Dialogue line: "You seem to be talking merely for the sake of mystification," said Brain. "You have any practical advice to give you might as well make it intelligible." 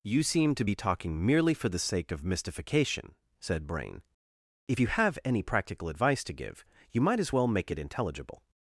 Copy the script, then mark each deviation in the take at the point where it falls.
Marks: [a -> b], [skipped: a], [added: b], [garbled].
"You seem to be talking merely for the sake of mystification," said Brain. [added: If] "You have any practical advice to give you might as well make it intelligible."